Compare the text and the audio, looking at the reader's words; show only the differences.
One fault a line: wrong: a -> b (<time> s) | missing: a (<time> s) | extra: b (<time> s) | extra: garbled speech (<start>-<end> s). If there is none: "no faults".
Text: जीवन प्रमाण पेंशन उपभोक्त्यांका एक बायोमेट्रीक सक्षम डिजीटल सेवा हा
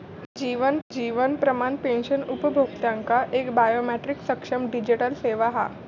extra: जीवन (0.9 s)